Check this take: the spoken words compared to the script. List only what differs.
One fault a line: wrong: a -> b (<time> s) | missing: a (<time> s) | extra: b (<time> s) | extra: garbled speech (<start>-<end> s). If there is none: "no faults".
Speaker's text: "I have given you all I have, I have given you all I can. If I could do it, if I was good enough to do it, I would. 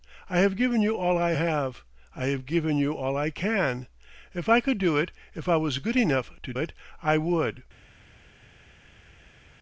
missing: do (6.5 s)